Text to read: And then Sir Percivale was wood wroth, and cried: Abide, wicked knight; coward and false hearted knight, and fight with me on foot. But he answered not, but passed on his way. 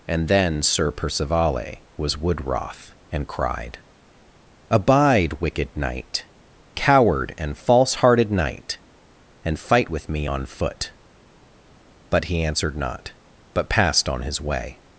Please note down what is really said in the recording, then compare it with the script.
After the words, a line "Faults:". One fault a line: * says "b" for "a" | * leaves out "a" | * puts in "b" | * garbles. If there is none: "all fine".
And then Sir Percivale was wood wroth, and cried: Abide, wicked knight; coward and false hearted knight, and fight with me on foot. But he answered not, but passed on his way.
Faults:
all fine